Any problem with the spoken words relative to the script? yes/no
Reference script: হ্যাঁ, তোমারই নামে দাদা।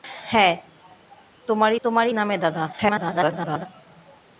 yes